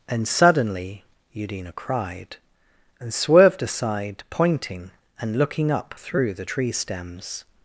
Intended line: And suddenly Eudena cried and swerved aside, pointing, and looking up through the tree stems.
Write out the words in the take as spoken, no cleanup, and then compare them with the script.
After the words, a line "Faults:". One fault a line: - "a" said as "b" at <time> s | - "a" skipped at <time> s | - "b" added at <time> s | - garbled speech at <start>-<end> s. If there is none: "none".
And suddenly Eudena cried and swerved aside, pointing, and looking up through the tree stems.
Faults:
none